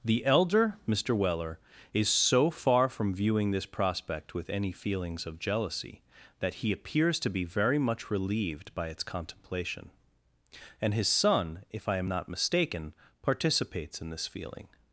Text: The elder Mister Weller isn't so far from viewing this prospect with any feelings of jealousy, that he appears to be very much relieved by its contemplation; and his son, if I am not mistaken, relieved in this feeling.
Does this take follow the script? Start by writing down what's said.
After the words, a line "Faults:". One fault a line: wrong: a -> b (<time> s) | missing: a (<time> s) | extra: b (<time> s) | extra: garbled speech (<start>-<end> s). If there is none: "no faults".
The elder Mister Weller is so far from viewing this prospect with any feelings of jealousy, that he appears to be very much relieved by its contemplation; and his son, if I am not mistaken, participates in this feeling.
Faults:
wrong: isn't -> is (1.9 s)
wrong: relieved -> participates (13.2 s)